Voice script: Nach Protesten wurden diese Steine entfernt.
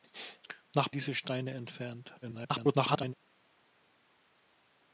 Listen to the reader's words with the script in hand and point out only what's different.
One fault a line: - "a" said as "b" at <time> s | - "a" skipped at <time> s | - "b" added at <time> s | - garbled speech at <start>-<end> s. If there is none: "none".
- "Protesten wurden" skipped at 0.9 s
- garbled speech at 2.2-3.1 s